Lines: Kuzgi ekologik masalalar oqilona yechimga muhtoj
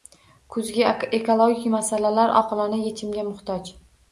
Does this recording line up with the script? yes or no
yes